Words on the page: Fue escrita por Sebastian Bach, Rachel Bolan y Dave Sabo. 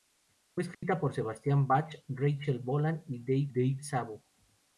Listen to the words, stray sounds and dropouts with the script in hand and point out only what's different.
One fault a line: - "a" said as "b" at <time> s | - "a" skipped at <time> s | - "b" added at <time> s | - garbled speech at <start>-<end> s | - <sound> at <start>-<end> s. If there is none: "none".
- dropout at 0.7-0.8 s
- "Dave" added at 3.5 s